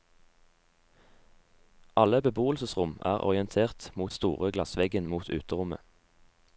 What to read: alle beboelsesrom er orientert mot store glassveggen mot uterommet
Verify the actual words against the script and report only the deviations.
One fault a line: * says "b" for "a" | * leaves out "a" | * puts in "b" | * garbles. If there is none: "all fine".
all fine